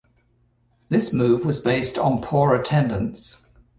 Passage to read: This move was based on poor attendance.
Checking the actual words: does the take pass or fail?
pass